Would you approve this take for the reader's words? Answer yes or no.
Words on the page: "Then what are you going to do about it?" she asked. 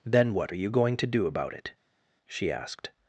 yes